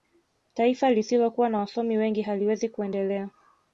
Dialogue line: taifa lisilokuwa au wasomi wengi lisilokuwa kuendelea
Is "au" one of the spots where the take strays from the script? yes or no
yes